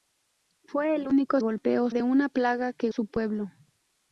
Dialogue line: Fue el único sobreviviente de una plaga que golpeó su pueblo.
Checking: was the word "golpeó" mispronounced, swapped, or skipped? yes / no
yes